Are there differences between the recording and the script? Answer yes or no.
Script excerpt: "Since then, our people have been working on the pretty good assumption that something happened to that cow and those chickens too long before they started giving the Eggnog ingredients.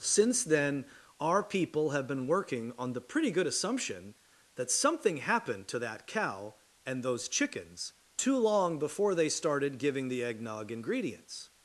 no